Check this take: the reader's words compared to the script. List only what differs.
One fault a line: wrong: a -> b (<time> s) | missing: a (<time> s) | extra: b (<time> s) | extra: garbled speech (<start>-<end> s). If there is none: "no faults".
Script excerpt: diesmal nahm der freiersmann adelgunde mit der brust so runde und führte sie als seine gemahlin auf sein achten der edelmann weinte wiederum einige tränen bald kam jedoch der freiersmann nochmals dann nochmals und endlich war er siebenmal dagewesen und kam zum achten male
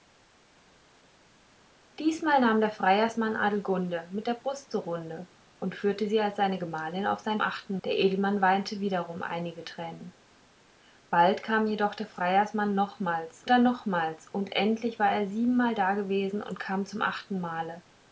no faults